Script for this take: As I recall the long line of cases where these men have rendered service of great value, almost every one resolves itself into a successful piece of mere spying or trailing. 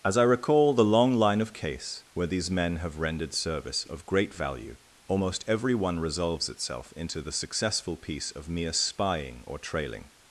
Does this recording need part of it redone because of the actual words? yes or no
yes